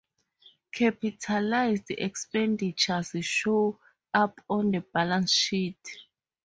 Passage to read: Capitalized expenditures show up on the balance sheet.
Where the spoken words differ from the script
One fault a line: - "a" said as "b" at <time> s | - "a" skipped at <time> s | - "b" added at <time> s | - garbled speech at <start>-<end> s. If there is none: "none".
none